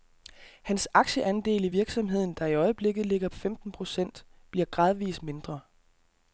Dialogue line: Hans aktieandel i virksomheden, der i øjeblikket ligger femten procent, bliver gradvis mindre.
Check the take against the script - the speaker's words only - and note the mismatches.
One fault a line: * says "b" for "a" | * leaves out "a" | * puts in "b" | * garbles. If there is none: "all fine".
all fine